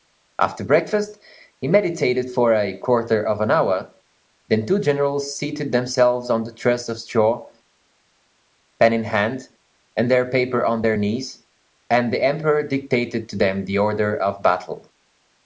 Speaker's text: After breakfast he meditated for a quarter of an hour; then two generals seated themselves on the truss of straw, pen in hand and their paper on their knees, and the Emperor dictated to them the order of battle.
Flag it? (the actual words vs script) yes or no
no